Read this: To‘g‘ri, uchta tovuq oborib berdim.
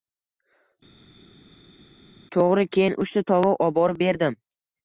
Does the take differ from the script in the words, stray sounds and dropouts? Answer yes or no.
yes